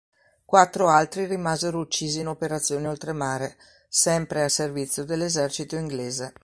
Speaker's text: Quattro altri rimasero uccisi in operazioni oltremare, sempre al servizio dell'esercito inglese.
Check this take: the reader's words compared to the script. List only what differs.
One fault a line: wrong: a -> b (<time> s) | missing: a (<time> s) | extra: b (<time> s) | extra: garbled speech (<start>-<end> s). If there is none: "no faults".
no faults